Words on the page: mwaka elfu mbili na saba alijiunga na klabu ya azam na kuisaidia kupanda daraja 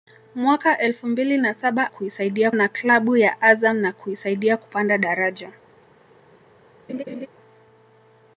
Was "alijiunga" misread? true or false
true